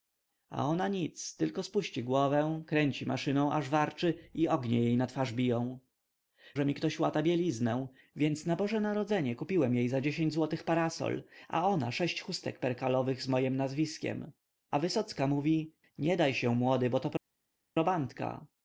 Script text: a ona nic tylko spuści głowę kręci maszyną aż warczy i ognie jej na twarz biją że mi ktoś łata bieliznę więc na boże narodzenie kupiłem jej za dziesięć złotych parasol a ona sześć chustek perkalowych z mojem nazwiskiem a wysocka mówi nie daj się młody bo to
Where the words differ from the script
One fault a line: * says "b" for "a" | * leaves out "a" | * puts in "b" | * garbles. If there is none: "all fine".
all fine